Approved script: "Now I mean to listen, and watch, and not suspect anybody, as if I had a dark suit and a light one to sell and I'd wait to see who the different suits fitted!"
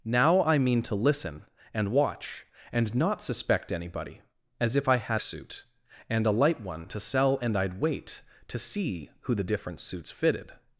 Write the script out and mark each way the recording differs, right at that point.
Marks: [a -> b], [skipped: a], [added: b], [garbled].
"Now I mean to listen, and watch, and not suspect anybody, as if I had [skipped: a dark] suit and a light one to sell and I'd wait to see who the different suits fitted!"